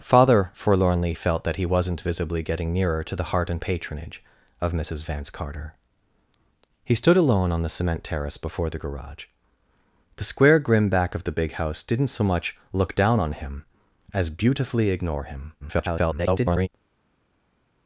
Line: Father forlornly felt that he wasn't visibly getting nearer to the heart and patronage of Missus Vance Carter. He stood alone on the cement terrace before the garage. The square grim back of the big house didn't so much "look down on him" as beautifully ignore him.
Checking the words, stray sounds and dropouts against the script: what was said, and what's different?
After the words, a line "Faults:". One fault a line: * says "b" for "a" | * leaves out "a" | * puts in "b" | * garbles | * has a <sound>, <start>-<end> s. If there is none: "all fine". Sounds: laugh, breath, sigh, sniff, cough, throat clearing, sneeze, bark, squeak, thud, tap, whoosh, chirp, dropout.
Father forlornly felt that he wasn't visibly getting nearer to the heart and patronage of Missus Vance Carter. He stood alone on the cement terrace before the garage. The square grim back of the big house didn't so much "look down on him" as beautifully ignore him. [garbled]
Faults:
* garbles